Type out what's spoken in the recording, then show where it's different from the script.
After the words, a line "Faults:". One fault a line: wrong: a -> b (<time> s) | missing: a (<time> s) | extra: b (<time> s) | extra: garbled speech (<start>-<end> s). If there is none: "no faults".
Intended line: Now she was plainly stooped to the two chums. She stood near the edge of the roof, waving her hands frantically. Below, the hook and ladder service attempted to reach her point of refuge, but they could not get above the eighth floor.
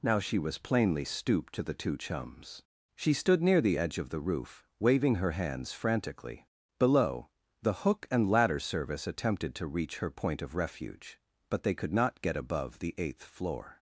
Now she was plainly stooped to the two chums. She stood near the edge of the roof, waving her hands frantically. Below, the hook and ladder service attempted to reach her point of refuge, but they could not get above the eighth floor.
Faults:
no faults